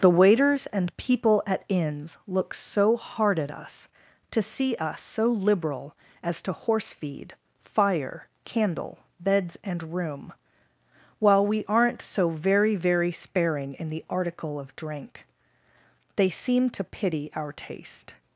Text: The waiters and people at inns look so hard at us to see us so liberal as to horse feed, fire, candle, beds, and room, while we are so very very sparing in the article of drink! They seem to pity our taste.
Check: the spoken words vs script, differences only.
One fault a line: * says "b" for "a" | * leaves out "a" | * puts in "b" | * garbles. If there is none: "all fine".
* says "aren't" for "are"